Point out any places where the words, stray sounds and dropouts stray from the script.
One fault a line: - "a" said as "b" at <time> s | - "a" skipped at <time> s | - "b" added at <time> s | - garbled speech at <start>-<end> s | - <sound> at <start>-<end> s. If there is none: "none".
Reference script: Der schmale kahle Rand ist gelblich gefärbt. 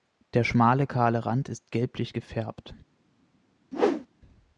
- whoosh at 3.7-4.1 s